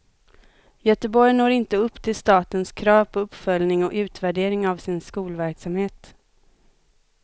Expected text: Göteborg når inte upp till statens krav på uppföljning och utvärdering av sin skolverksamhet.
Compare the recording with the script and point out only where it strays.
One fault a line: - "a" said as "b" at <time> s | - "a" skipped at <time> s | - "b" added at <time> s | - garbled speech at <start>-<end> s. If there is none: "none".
none